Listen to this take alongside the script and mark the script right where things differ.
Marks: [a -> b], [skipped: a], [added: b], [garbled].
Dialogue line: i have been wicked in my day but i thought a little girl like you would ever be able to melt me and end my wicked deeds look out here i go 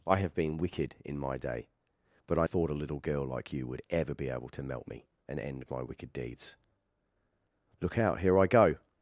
i have been wicked in my day but i thought a little girl like you would ever be able to melt me and end my wicked deeds look out here i go